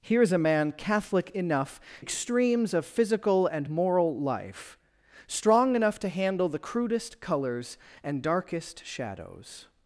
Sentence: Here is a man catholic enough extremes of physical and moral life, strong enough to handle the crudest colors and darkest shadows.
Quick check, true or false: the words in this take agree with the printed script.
true